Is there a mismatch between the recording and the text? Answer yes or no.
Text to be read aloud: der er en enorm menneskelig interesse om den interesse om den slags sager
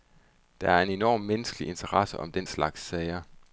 yes